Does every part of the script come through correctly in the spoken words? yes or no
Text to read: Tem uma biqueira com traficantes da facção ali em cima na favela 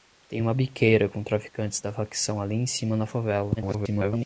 no